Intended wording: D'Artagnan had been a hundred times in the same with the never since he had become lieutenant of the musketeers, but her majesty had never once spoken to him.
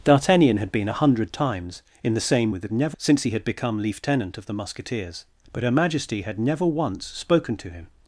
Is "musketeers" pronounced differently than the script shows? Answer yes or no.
no